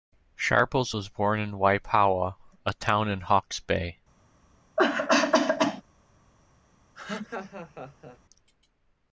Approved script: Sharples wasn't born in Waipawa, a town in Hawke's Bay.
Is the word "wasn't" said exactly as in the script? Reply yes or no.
no